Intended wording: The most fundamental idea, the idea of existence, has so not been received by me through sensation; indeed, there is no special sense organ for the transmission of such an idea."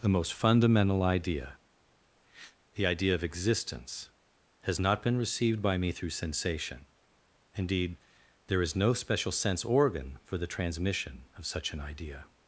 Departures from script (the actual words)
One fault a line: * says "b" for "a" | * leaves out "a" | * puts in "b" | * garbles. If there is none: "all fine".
* leaves out "so"